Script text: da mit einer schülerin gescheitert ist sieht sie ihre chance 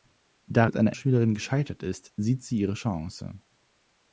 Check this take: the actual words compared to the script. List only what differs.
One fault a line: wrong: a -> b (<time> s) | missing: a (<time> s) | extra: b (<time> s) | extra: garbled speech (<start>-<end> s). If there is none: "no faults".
no faults